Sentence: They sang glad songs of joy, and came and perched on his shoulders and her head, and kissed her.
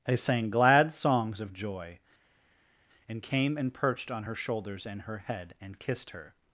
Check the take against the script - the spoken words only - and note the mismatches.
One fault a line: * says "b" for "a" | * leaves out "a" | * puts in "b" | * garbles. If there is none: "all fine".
* says "her" for "his"